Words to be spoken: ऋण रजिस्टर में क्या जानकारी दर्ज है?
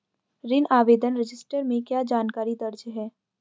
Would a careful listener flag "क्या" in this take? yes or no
no